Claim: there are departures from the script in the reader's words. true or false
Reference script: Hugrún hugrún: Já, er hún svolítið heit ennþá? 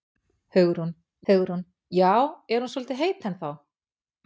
false